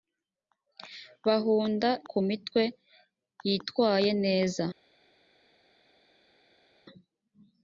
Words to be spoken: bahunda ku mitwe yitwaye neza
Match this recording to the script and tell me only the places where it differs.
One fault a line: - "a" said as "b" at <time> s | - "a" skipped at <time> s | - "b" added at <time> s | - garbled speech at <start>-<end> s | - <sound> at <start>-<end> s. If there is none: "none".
none